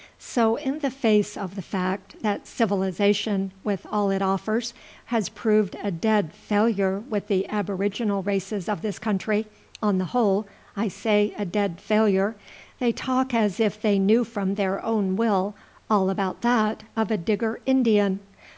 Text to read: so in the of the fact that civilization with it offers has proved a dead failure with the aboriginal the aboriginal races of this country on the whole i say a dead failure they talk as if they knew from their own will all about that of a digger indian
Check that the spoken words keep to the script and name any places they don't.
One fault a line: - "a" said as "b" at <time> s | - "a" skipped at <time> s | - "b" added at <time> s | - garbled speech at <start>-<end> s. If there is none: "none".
- "face" added at 0.9 s
- "all" added at 3.9 s
- "the aboriginal" skipped at 8.2 s